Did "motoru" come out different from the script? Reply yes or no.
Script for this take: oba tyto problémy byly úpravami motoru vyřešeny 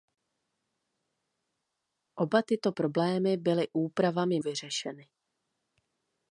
yes